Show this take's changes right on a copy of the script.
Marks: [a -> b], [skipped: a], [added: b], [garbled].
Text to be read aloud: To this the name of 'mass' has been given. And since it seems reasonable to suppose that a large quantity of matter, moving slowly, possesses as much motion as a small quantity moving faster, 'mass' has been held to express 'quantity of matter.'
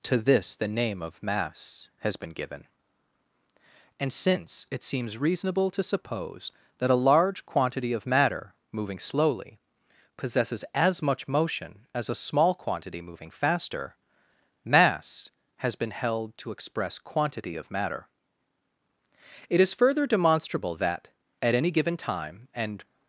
To this the name of 'mass' has been given. And since it seems reasonable to suppose that a large quantity of matter, moving slowly, possesses as much motion as a small quantity moving faster, 'mass' has been held to express 'quantity of matter.' [added: It is further demonstrable that at any given time and]